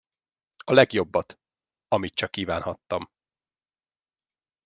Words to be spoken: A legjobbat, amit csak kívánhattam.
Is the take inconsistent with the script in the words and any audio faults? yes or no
no